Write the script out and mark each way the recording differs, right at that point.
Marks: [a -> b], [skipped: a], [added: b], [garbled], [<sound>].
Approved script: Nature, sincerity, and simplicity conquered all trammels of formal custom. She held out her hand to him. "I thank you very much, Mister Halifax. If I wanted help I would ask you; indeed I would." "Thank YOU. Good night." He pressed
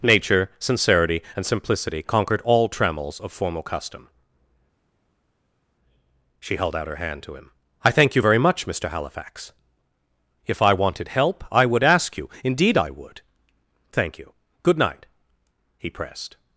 Nature, sincerity, and simplicity conquered all trammels of formal custom. She held out her hand to him. "I thank you very much, Mister Halifax. If I wanted help I would ask you; indeed I would." "Thank YOU. Good night." He pressed